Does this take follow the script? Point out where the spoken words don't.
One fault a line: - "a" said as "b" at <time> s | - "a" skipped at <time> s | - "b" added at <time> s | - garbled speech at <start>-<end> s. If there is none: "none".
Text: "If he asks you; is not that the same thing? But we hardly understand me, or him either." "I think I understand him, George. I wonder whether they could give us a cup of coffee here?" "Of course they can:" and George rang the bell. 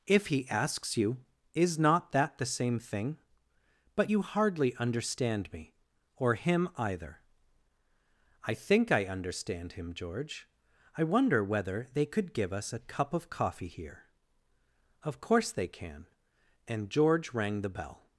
- "we" said as "you" at 4.1 s